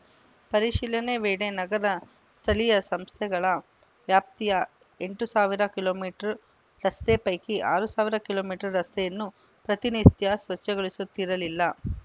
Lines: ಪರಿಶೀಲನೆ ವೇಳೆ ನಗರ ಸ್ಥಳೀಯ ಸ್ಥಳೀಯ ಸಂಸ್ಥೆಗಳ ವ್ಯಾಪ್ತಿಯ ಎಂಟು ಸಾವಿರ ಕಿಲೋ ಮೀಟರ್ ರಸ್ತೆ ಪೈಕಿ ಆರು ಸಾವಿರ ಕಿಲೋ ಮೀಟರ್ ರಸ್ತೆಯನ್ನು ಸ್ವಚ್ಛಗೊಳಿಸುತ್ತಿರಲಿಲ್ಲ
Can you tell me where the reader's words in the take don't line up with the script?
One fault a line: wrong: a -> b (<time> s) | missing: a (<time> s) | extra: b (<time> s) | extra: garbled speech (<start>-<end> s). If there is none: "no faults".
missing: ಸ್ಥಳೀಯ (2.7 s)
extra: ಪ್ರತಿನಿತ್ಯ (9.7 s)